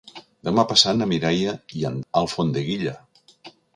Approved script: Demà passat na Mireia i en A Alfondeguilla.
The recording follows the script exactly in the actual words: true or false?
true